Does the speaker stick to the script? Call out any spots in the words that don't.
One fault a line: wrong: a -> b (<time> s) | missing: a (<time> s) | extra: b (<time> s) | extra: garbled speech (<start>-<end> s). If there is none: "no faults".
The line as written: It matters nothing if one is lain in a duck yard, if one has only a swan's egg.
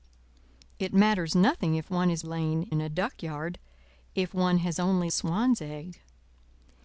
no faults